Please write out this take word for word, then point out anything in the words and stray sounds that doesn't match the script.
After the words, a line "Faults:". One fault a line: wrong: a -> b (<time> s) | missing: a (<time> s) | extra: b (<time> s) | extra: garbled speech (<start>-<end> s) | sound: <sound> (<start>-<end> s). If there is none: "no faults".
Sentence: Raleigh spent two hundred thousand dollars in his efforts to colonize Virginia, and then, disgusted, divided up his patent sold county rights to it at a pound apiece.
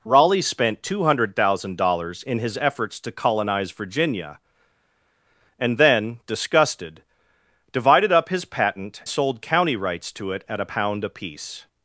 Raleigh spent two hundred thousand dollars in his efforts to colonize Virginia, and then, disgusted, divided up his patent sold county rights to it at a pound apiece.
Faults:
no faults